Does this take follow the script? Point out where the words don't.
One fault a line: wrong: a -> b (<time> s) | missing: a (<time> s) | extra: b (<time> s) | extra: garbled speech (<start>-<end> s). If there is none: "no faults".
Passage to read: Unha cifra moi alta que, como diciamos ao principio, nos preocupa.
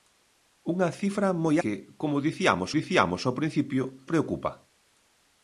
missing: alta (1.6 s)
extra: diciamos (2.8 s)
missing: nos (3.8 s)